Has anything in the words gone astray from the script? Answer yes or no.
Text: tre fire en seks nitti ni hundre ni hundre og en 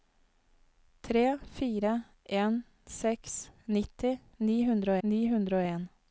no